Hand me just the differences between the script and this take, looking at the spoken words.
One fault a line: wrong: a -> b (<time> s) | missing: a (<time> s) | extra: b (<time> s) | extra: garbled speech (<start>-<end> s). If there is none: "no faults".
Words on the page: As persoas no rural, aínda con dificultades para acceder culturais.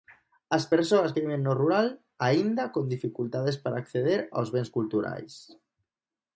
extra: que viven (1.1 s)
extra: aos bens (4.4 s)